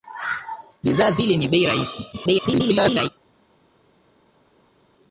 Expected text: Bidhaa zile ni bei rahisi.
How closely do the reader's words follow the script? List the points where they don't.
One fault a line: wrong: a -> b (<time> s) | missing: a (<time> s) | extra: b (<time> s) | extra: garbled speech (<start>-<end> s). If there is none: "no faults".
extra: garbled speech (2.1-3.1 s)